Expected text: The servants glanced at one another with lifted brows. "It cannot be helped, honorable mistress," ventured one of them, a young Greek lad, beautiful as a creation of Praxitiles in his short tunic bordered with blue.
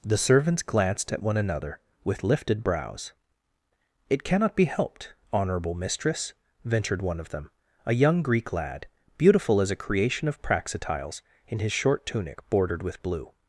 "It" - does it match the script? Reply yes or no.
yes